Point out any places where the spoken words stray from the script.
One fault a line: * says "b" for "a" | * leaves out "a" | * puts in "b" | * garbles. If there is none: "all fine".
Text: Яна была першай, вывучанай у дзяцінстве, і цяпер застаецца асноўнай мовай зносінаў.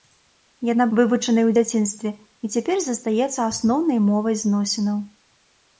* leaves out "была першай"